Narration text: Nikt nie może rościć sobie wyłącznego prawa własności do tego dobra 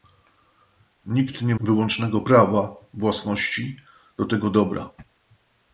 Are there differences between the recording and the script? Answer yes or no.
yes